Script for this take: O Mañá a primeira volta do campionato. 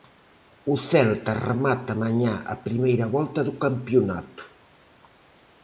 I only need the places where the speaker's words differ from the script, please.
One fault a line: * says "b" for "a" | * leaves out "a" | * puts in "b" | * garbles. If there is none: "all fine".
* puts in "Celta remata"